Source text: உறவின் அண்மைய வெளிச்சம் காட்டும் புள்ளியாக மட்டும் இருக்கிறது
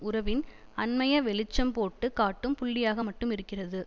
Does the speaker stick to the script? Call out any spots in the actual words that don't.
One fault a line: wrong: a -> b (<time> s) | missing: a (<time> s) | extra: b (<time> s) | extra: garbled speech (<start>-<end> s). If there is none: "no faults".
extra: போட்டு (1.7 s)